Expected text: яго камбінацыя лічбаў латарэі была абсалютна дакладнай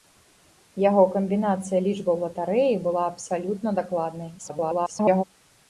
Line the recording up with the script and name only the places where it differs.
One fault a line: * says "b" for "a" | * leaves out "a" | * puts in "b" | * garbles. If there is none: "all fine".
* garbles